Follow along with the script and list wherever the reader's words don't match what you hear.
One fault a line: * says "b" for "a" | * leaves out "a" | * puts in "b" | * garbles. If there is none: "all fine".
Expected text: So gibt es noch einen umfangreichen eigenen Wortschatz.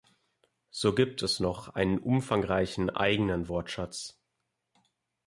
all fine